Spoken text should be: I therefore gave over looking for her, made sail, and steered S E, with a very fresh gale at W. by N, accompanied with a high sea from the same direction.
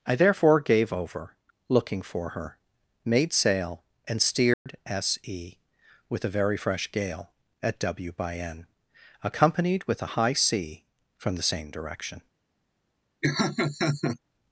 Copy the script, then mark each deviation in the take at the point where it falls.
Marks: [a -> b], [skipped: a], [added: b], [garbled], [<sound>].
I therefore gave over looking for her, made sail, and steered [dropout] S E, with a very fresh gale at W. by N, accompanied with a high sea from the same direction. [laugh]